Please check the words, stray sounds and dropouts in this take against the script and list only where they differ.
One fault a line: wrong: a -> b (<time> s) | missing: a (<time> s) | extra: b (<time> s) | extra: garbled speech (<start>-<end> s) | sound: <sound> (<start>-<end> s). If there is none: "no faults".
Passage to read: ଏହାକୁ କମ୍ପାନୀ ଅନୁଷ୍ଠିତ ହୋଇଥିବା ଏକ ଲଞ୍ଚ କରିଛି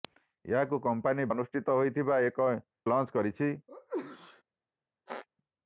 sound: sneeze (3.7-4.4 s)
sound: squeak (5.1-5.3 s)